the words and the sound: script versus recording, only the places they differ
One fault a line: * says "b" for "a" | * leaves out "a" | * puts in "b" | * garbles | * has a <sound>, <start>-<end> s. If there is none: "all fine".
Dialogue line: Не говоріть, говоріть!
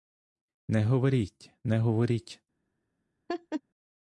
* puts in "не"
* has a laugh, 3.3-3.6 s